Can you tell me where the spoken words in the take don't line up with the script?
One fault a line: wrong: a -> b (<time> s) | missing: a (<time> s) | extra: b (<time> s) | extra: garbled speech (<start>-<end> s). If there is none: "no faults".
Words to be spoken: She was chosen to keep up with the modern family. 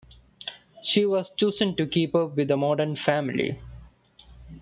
no faults